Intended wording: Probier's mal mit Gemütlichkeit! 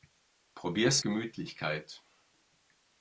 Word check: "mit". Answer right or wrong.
wrong